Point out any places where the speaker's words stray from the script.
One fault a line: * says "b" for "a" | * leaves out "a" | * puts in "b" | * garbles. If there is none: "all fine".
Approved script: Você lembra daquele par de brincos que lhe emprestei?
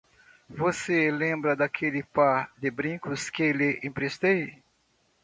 all fine